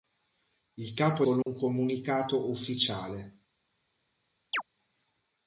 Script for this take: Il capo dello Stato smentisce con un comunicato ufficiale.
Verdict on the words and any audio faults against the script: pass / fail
fail